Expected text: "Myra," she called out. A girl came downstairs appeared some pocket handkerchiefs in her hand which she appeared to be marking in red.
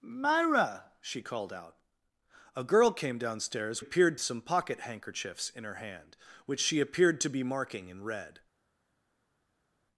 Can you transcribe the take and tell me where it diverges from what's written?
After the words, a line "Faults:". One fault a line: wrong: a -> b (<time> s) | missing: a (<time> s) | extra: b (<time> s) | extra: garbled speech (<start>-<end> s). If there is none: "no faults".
"Myra," she called out. A girl came downstairs appeared some pocket handkerchiefs in her hand which she appeared to be marking in red.
Faults:
no faults